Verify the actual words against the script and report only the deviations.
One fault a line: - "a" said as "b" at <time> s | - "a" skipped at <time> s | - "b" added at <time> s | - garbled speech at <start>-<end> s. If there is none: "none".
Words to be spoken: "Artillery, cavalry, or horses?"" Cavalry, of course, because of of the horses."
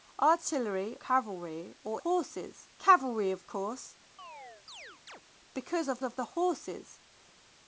none